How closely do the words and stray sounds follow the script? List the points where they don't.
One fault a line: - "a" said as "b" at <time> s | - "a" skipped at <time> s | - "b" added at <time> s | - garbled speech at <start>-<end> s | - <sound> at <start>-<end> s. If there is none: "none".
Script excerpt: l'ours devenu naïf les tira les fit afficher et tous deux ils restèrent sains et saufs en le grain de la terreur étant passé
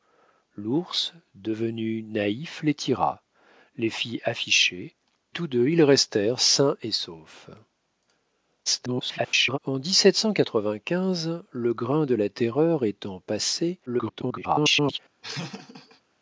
- "et" skipped at 5.0 s
- garbled speech at 8.7-9.6 s
- garbled speech at 13.9-15.0 s
- laugh at 15.2-16.0 s